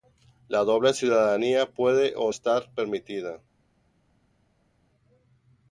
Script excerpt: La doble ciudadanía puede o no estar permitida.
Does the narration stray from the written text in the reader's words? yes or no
yes